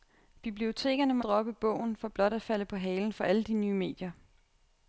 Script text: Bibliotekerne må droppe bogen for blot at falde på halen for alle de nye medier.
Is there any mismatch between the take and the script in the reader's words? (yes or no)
no